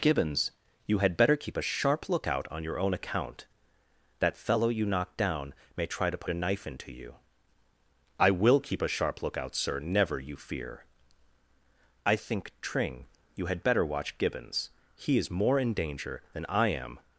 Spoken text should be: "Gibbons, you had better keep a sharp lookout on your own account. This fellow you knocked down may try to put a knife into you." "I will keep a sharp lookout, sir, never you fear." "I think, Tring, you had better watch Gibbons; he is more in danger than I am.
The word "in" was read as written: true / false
true